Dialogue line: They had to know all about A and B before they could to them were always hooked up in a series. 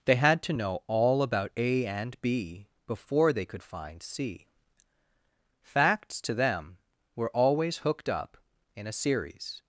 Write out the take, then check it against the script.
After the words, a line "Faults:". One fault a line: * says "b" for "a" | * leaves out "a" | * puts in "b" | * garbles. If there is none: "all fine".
They had to know all about A and B before they could find C. Facts to them were always hooked up in a series.
Faults:
* puts in "find C Facts"